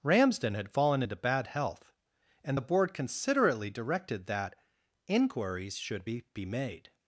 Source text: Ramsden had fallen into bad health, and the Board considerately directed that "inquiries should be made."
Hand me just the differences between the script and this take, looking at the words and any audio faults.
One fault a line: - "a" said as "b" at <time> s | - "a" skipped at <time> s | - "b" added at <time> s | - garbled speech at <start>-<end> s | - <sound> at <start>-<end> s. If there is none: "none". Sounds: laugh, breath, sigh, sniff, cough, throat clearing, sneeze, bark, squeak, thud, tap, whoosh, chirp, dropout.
- "be" added at 6.3 s